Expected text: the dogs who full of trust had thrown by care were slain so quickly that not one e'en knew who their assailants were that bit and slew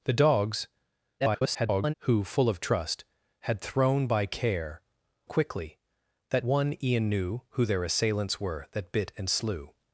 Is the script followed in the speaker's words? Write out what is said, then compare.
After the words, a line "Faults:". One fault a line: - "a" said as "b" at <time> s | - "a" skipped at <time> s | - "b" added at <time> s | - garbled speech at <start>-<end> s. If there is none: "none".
the dogs [garbled] who full of trust had thrown by care quickly that one e'en knew who their assailants were that bit and slew
Faults:
- garbled speech at 1.2-1.9 s
- "were slain so" skipped at 4.8 s
- "not" skipped at 6.5 s